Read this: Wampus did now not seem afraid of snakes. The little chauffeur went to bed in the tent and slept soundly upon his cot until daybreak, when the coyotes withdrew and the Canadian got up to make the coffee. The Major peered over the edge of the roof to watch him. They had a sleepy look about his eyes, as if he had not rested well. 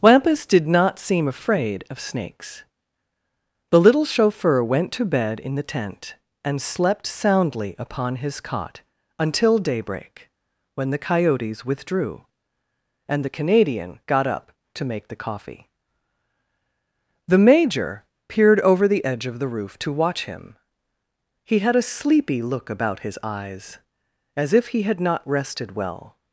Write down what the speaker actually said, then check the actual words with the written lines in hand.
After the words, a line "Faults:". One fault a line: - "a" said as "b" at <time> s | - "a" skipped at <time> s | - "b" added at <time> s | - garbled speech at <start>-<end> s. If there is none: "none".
Wampus did not seem afraid of snakes. The little chauffeur went to bed in the tent and slept soundly upon his cot until daybreak, when the coyotes withdrew and the Canadian got up to make the coffee. The Major peered over the edge of the roof to watch him. He had a sleepy look about his eyes, as if he had not rested well.
Faults:
- "now" skipped at 0.7 s
- "They" said as "He" at 21.4 s